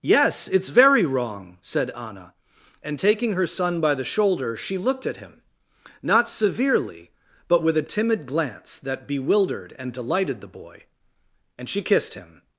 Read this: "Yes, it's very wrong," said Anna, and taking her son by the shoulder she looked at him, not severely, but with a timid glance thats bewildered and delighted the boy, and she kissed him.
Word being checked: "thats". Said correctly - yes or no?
no